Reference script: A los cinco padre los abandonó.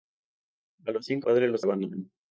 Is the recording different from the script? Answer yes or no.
no